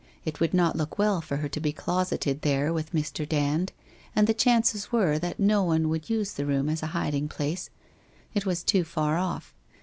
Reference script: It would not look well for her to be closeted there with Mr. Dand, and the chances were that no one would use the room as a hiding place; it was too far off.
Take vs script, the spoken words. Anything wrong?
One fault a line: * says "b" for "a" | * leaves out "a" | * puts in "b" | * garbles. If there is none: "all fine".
all fine